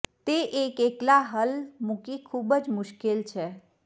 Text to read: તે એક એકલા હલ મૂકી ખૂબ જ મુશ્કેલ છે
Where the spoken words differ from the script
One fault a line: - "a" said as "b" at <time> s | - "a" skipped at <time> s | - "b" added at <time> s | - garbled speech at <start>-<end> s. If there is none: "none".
none